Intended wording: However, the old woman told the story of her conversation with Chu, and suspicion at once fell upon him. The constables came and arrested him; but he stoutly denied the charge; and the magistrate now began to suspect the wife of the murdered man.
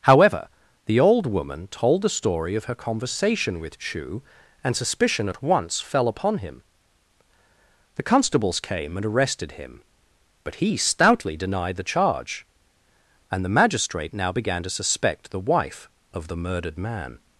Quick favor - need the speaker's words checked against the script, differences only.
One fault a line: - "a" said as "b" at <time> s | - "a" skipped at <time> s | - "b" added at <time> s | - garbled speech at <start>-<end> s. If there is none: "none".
none